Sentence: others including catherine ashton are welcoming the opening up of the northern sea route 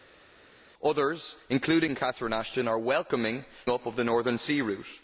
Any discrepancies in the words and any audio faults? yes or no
yes